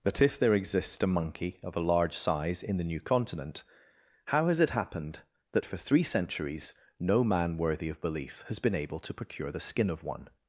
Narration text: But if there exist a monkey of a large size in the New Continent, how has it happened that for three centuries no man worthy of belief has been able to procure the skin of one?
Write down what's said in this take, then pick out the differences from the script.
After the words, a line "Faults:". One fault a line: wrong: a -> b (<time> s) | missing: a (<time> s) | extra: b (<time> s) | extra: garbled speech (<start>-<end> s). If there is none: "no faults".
But if there exists a monkey of a large size in the New Continent, how has it happened that for three centuries no man worthy of belief has been able to procure the skin of one?
Faults:
wrong: exist -> exists (0.6 s)